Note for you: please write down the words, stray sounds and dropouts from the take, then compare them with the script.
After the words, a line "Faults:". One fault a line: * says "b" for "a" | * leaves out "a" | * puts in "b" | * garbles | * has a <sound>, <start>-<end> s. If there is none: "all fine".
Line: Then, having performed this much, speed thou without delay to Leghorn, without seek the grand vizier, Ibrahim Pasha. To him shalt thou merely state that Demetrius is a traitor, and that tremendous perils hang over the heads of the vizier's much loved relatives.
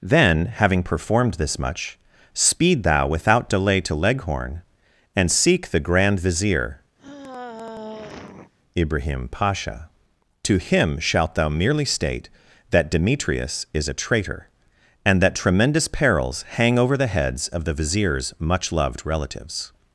Then, having performed this much, speed thou without delay to Leghorn, and seek the grand vizier, Ibrahim Pasha. To him shalt thou merely state that Demetrius is a traitor, and that tremendous perils hang over the heads of the vizier's much loved relatives.
Faults:
* says "and" for "without"
* has a sigh, 7.0-8.5 s